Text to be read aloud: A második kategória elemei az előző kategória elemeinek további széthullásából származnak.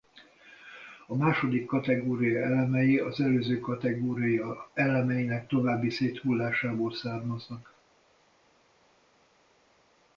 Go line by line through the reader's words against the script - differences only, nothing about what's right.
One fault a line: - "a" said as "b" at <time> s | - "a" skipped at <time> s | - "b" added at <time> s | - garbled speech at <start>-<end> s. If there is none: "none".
none